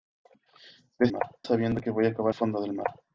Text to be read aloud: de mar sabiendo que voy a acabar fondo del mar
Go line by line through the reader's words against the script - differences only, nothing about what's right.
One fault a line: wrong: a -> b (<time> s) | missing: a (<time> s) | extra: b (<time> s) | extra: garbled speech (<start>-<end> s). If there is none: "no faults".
no faults